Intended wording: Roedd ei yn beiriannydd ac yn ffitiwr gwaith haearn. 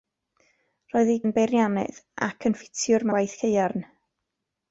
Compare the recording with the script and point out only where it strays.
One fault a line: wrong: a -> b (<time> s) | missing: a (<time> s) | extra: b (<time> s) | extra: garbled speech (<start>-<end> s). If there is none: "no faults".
no faults